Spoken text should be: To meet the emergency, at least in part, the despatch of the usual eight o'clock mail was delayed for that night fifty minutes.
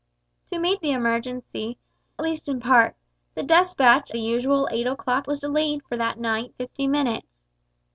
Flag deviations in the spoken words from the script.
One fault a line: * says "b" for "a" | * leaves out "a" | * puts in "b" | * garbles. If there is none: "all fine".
* leaves out "at"
* leaves out "of"
* leaves out "mail"